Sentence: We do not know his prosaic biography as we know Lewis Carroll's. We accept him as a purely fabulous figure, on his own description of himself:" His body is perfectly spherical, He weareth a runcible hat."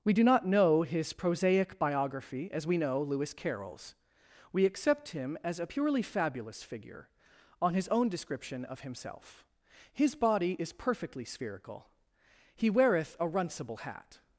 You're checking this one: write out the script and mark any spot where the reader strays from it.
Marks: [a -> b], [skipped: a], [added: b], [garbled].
We do not know his prosaic biography as we know Lewis Carroll's. We accept him as a purely fabulous figure, on his own description of himself:" His body is perfectly spherical, He weareth a runcible hat."